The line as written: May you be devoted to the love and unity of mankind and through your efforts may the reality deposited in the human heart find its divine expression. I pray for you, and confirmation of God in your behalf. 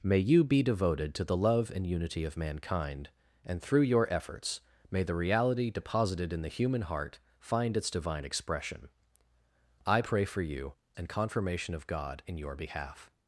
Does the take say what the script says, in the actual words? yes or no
yes